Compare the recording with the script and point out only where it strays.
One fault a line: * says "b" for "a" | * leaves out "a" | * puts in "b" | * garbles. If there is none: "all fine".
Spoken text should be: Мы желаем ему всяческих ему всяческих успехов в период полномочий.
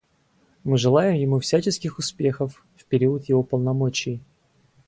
* leaves out "ему всяческих"
* puts in "его"